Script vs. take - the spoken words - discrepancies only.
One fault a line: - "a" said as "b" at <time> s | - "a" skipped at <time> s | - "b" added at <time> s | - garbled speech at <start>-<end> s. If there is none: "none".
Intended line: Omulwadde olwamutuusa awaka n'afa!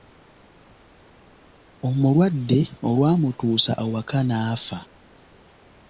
none